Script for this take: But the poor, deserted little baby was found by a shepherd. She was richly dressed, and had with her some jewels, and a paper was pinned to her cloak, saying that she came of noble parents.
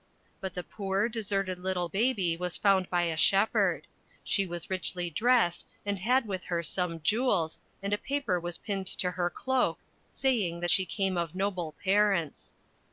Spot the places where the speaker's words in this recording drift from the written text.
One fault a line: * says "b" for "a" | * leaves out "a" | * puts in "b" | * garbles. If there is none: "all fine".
all fine